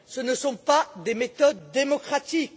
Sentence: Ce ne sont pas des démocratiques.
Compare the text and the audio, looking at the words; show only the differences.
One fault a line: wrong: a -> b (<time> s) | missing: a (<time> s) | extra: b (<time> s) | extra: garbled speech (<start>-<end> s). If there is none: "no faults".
extra: méthodes (1.1 s)